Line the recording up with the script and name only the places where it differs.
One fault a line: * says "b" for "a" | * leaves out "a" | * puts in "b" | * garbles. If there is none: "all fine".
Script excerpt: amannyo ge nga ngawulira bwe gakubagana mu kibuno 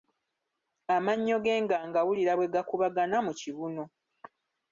all fine